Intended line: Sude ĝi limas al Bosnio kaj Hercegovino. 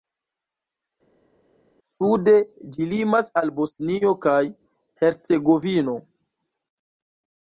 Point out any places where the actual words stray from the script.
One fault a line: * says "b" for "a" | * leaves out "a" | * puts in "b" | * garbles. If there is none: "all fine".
all fine